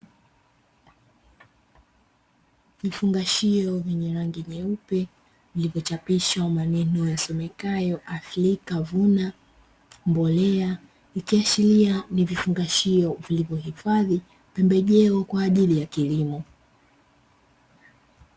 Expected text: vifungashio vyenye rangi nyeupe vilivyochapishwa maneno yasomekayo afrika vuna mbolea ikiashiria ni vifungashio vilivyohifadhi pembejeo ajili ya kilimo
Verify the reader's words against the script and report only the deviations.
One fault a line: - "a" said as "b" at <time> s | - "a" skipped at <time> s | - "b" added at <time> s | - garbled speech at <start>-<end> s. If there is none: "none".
- "kwa" added at 15.2 s